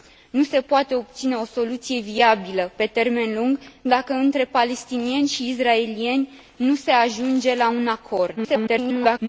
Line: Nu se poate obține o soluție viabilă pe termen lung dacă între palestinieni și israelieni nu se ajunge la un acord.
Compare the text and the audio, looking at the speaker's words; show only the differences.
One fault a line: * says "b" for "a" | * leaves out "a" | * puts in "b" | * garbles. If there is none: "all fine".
* garbles